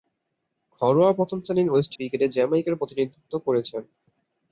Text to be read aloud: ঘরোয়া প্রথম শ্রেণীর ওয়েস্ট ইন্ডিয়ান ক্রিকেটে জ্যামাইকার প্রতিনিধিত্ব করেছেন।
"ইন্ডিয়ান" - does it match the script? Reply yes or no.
no